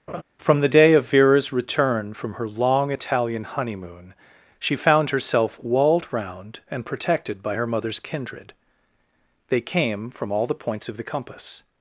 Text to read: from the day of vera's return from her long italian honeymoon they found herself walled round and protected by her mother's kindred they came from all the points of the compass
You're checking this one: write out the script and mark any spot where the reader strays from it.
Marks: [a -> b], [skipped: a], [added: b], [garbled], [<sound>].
[laugh] from the day of vera's return from her long italian honeymoon [they -> she] found herself walled round and protected by her mother's kindred they came from all the points of the compass